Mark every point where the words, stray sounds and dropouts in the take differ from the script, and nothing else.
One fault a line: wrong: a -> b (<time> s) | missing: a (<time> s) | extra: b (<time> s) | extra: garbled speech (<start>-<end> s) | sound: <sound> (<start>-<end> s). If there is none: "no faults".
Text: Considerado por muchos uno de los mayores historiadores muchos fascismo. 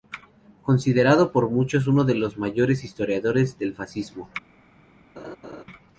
wrong: muchos -> del (3.6 s)
sound: laugh (5.2-5.6 s)